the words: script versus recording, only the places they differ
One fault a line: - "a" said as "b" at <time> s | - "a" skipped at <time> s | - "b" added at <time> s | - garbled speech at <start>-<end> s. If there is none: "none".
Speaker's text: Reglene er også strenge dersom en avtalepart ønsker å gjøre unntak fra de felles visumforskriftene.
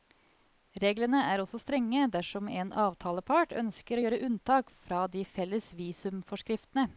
none